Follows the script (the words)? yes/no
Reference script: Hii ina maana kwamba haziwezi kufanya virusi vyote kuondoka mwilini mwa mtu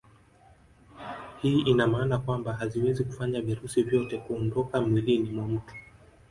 yes